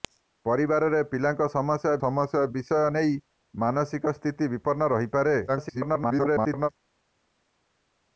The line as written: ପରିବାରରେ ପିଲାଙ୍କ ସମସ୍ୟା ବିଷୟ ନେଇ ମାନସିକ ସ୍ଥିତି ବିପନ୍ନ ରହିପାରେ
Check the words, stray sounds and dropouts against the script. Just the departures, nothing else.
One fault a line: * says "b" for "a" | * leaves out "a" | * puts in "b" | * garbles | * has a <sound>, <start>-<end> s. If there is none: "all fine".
* puts in "ସମସ୍ୟା"
* garbles